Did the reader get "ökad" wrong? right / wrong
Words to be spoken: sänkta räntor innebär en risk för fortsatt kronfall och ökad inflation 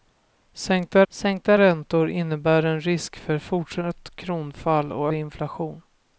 wrong